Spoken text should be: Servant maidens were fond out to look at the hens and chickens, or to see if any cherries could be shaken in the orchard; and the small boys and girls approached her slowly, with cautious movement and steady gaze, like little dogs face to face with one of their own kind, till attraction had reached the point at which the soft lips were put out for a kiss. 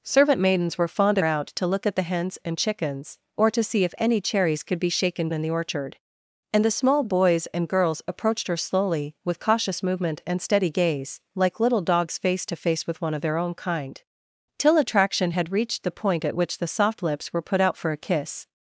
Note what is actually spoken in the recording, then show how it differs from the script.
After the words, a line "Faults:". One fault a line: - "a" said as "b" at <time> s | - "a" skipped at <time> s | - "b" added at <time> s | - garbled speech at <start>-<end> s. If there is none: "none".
Servant maidens were fond out to look at the hens and chickens, or to see if any cherries could be shaken in the orchard; and the small boys and girls approached her slowly, with cautious movement and steady gaze, like little dogs face to face with one of their own kind, till attraction had reached the point at which the soft lips were put out for a kiss.
Faults:
none